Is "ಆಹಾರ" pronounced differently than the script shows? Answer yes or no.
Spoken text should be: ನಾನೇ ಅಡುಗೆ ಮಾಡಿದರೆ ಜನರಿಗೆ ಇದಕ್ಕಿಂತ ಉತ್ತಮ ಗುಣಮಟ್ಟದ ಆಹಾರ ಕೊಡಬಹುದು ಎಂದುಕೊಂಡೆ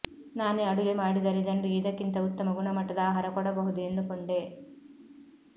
no